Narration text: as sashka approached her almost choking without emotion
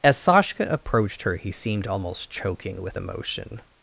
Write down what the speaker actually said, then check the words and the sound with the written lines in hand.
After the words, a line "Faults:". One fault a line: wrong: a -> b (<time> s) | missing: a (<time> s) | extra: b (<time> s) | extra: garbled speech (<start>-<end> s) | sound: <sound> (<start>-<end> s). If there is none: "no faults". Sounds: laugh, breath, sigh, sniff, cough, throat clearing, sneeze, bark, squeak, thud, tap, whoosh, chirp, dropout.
as sashka approached her he seemed almost choking with emotion
Faults:
extra: he seemed (1.3 s)
wrong: without -> with (2.8 s)